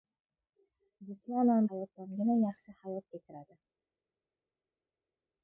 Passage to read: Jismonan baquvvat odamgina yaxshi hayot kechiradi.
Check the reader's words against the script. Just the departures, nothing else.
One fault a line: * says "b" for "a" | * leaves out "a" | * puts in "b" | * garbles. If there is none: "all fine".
* says "hayot" for "baquvvat"